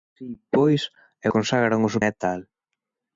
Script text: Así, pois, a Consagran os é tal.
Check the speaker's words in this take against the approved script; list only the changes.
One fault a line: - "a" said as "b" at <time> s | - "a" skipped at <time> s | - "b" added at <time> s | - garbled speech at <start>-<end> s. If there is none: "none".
none